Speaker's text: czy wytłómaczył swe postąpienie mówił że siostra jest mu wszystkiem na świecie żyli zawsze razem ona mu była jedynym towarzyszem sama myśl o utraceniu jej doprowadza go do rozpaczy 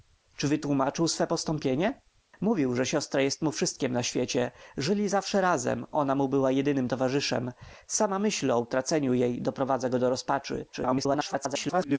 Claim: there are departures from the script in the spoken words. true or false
true